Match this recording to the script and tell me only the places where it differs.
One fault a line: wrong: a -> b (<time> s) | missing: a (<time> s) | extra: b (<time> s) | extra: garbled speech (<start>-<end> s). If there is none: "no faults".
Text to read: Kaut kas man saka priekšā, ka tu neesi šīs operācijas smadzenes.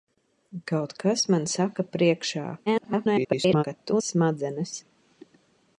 extra: garbled speech (2.7-3.6 s)
missing: neesi šīs operācijas (4.0 s)